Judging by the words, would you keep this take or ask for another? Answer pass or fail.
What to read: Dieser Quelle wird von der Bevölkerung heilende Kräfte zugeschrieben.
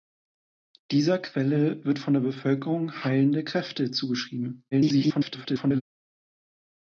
fail